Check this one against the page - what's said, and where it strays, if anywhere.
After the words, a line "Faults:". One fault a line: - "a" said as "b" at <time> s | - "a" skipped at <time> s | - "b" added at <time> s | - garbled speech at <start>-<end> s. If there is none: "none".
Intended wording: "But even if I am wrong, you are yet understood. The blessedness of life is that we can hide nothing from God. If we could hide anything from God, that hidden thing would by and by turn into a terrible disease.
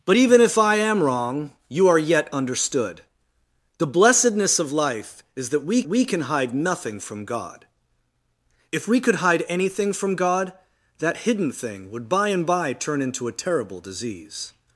"But even if I am wrong, you are yet understood. The blessedness of life is that we we can hide nothing from God. If we could hide anything from God, that hidden thing would by and by turn into a terrible disease.
Faults:
- "we" added at 5.9 s